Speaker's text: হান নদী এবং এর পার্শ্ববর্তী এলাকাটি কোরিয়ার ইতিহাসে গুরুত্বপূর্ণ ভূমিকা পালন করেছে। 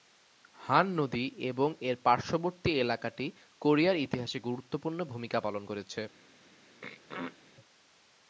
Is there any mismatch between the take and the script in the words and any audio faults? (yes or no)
yes